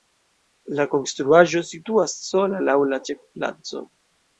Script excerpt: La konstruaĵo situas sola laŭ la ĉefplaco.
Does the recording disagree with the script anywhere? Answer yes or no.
no